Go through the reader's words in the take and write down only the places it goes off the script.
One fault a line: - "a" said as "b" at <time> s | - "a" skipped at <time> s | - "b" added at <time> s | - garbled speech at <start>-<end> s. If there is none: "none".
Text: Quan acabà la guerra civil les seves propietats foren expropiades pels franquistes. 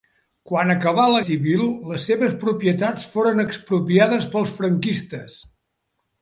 - "guerra" skipped at 1.2 s